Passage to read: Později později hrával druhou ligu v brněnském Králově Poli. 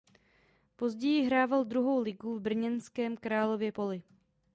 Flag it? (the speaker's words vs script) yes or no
yes